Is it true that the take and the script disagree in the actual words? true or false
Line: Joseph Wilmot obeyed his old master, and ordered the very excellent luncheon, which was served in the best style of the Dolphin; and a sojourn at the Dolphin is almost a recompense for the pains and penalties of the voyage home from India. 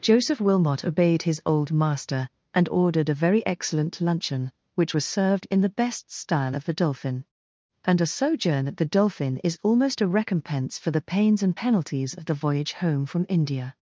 true